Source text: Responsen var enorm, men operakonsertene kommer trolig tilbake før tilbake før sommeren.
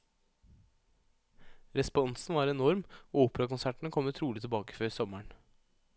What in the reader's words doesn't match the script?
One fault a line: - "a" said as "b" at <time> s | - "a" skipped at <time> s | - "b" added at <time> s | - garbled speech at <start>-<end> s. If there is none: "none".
- "men" said as "og" at 3.1 s
- "tilbake før" skipped at 4.9 s